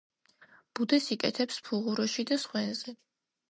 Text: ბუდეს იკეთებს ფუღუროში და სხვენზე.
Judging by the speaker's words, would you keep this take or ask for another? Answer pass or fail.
pass